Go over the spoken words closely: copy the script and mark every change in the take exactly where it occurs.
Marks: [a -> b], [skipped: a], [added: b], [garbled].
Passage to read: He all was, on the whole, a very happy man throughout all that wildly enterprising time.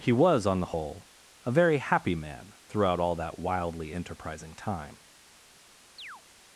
He [skipped: all] was, on the whole, a very happy man throughout all that wildly enterprising time.